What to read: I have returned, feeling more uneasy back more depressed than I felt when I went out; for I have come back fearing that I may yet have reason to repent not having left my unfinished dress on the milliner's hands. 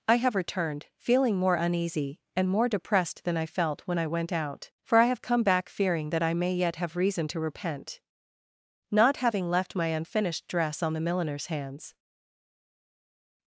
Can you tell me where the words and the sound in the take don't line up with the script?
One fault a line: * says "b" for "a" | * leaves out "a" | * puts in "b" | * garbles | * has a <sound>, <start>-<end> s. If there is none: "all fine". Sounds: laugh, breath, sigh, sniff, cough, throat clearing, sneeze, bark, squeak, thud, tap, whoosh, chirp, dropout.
* says "and" for "back"